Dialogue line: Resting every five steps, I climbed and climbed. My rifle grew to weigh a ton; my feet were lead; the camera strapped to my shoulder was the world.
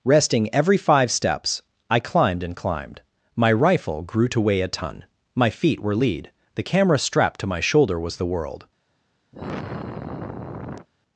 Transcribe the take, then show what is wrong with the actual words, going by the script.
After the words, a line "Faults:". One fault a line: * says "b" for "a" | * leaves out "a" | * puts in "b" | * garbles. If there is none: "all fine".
Resting every five steps, I climbed and climbed. My rifle grew to weigh a ton; my feet were lead; the camera strapped to my shoulder was the world.
Faults:
all fine